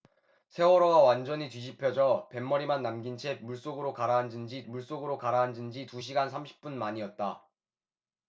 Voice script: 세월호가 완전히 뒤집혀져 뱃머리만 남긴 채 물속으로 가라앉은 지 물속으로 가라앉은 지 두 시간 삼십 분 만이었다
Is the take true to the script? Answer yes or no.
yes